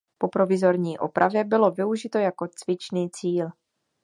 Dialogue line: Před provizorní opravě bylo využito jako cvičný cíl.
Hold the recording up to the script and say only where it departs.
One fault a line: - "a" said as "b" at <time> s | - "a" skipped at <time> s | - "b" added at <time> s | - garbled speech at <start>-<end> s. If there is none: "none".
- "Před" said as "Po" at 0.2 s